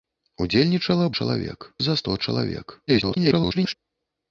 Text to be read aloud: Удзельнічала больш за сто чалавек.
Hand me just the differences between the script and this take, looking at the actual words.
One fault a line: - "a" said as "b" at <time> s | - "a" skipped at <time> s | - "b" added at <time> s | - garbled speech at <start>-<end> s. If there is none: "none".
- "больш" said as "чалавек" at 1.2 s
- garbled speech at 2.9-3.7 s